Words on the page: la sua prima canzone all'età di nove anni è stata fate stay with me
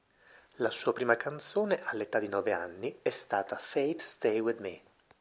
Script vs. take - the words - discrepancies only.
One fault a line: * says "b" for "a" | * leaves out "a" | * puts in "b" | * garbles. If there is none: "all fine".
all fine